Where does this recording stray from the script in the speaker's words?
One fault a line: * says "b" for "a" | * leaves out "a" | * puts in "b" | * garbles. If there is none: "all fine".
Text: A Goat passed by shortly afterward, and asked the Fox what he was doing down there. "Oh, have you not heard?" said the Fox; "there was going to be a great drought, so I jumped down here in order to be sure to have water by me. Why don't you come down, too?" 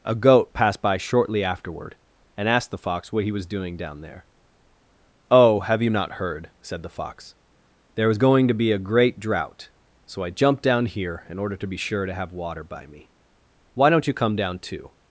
all fine